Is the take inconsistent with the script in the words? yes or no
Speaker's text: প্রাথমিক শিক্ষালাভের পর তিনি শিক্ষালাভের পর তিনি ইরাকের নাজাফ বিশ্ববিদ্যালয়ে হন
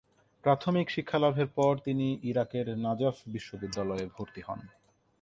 yes